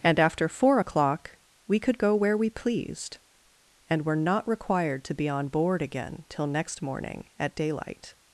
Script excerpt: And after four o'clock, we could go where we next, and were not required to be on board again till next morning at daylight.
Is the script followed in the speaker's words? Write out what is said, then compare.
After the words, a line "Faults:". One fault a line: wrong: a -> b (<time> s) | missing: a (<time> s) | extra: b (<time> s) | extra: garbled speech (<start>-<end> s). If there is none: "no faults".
And after four o'clock, we could go where we pleased, and were not required to be on board again till next morning at daylight.
Faults:
wrong: next -> pleased (2.5 s)